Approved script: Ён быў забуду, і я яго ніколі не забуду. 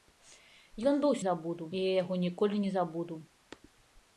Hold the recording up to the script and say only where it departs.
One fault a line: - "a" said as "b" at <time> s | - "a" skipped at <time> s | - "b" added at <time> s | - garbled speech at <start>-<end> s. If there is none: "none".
none